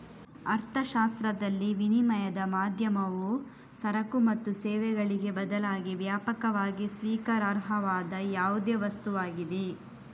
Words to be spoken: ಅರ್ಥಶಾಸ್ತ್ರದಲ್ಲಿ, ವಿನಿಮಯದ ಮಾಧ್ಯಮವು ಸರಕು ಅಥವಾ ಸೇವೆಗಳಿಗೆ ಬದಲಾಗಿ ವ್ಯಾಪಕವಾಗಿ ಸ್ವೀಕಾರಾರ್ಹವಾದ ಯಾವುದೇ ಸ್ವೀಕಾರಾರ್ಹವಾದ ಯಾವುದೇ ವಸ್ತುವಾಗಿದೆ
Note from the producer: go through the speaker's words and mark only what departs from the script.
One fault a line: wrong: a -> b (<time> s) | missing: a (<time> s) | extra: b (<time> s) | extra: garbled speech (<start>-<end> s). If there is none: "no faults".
wrong: ಅಥವಾ -> ಮತ್ತು (4.2 s)
missing: ಸ್ವೀಕಾರಾರ್ಹವಾದ ಯಾವುದೇ (8.8 s)